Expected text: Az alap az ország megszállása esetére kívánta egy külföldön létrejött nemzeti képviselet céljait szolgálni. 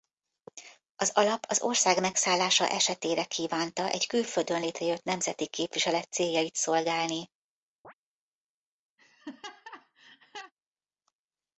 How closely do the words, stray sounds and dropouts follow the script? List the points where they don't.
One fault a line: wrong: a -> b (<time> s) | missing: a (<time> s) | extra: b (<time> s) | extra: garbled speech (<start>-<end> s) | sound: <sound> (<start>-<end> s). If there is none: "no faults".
sound: chirp (7.8-7.9 s)
sound: laugh (9.0-10.5 s)